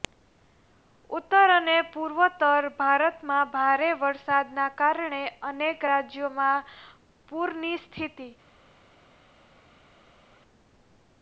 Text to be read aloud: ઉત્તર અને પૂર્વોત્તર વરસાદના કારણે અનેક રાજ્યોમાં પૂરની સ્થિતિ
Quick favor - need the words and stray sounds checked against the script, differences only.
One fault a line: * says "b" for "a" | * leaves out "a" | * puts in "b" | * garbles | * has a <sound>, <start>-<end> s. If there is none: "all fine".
* puts in "ભારતમાં ભારે"